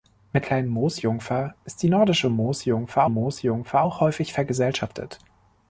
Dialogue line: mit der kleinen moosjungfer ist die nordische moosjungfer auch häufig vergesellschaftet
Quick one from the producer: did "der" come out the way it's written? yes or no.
no